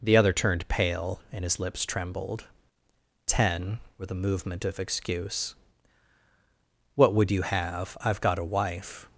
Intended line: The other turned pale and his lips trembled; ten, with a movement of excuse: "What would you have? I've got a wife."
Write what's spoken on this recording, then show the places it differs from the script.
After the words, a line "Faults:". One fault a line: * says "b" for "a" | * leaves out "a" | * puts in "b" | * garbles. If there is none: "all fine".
The other turned pale and his lips trembled; ten, with a movement of excuse: "What would you have? I've got a wife."
Faults:
all fine